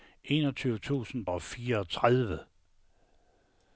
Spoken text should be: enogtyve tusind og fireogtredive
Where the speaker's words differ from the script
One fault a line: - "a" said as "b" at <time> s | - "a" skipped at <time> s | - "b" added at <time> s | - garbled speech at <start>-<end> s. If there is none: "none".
none